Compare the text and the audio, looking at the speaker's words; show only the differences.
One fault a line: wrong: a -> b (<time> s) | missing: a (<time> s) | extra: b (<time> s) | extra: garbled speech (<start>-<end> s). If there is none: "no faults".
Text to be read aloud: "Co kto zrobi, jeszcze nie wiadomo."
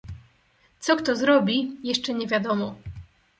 no faults